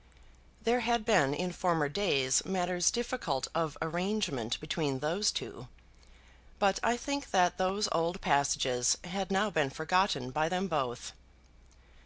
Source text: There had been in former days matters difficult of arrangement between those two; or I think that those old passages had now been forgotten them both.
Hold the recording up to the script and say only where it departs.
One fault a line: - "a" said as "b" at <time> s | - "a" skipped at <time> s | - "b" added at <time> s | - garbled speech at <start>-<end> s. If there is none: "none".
- "or" said as "but" at 6.6 s
- "by" added at 10.3 s